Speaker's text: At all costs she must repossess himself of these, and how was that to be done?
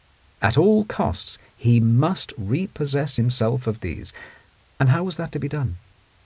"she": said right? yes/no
no